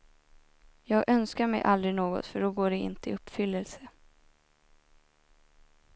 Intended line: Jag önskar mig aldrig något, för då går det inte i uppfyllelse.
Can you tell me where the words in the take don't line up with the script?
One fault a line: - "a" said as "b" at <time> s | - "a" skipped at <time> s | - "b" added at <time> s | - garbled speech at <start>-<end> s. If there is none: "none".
none